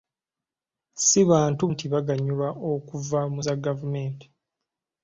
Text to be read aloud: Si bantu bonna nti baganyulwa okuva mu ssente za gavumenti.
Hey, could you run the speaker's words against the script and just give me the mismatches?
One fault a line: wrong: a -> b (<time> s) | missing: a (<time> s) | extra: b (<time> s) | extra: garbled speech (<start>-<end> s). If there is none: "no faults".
missing: bonna (1.6 s)
missing: ssente (3.4 s)